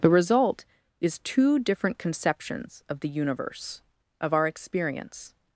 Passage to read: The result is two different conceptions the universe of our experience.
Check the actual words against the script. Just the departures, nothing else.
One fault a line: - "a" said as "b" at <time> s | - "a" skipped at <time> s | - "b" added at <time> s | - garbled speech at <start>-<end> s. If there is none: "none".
- "of" added at 2.9 s